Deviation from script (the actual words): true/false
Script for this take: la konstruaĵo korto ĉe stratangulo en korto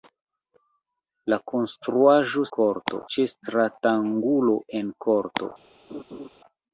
false